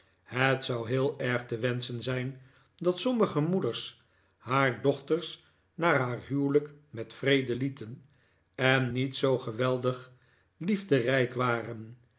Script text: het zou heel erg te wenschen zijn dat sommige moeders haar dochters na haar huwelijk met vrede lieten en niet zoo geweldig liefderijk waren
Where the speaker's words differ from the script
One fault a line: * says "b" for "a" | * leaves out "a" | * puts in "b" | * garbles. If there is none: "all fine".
all fine